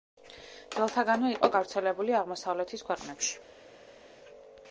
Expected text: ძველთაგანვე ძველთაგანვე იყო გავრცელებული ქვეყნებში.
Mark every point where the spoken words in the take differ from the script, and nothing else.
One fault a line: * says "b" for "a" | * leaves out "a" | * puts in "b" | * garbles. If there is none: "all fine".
* leaves out "ძველთაგანვე"
* puts in "აღმოსავლეთის"